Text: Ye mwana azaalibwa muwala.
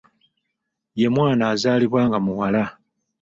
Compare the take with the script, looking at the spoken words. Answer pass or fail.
fail